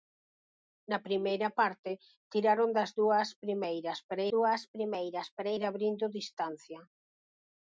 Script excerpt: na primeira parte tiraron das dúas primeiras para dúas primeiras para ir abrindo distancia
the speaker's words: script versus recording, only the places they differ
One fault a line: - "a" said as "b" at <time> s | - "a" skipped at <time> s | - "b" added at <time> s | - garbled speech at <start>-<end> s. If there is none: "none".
none